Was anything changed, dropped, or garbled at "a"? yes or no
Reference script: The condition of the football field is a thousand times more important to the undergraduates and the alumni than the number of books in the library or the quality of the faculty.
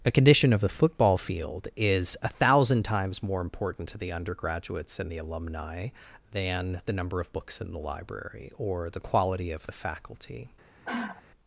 no